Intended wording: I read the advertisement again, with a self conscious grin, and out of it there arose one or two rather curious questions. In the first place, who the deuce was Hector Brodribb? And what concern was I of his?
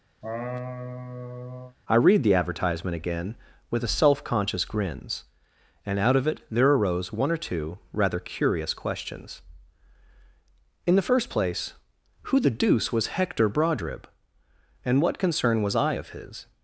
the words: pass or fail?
fail